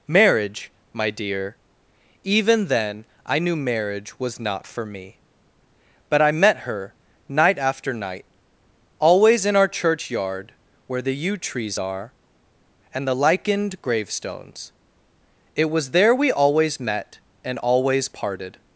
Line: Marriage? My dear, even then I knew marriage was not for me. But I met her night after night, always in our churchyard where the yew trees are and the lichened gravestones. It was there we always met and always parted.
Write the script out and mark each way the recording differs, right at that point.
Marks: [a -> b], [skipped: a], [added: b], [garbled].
Marriage? My dear, even then I knew marriage was not for me. But I met her night after night, always in our churchyard where the yew trees are and the lichened gravestones. It was there we always met and always parted.